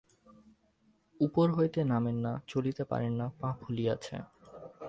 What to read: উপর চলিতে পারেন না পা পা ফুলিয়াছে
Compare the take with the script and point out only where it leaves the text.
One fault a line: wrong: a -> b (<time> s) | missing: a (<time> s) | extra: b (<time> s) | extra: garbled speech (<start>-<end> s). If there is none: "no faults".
extra: হইতে নামেন না (1.5 s)
missing: পা (3.5 s)